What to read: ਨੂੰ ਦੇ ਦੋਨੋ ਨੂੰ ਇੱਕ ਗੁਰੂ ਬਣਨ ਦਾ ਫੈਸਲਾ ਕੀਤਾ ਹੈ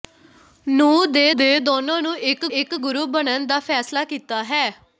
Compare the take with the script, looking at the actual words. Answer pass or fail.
fail